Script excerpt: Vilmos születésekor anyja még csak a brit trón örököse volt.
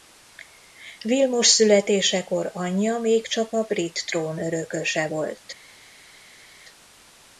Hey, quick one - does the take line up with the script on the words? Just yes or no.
yes